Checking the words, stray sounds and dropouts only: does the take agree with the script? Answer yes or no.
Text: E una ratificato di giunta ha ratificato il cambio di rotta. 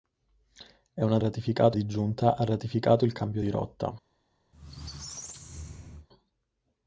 no